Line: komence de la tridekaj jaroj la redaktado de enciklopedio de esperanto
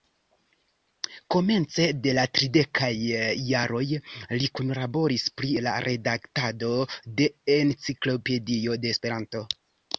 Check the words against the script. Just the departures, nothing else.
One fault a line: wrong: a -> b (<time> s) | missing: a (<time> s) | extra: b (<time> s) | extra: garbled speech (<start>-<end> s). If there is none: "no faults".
extra: li kunlaboris pri (4.4 s)